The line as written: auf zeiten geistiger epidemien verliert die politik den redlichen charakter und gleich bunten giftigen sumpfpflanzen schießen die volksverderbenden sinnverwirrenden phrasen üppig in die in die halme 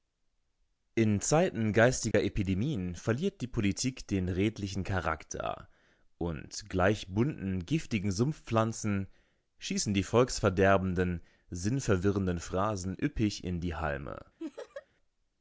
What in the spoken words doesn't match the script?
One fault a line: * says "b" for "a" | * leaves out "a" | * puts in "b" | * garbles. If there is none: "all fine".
* says "in" for "auf"
* leaves out "in die"